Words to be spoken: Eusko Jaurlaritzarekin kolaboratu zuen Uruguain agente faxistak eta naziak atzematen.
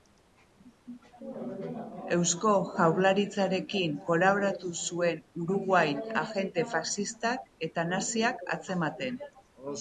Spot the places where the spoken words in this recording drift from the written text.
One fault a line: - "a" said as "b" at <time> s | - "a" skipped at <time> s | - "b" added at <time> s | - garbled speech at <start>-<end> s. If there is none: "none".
none